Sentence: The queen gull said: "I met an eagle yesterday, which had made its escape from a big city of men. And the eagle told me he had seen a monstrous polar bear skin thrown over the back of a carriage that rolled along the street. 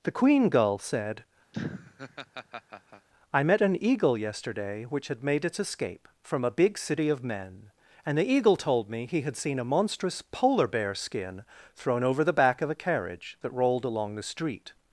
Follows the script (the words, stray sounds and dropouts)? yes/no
no